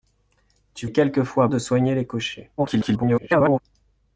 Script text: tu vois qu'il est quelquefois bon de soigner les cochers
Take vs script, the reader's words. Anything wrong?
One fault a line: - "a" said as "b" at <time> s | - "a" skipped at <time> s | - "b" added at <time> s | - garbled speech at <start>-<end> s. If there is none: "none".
- "vois qu'il" skipped at 0.9 s
- "bon" skipped at 1.5 s
- garbled speech at 2.6-3.6 s